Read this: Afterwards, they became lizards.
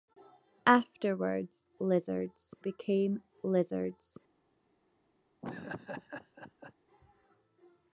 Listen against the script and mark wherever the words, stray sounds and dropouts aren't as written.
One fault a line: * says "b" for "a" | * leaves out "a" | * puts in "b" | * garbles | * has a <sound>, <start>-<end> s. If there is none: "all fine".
* says "lizards" for "they"
* has a laugh, 5.4-6.7 s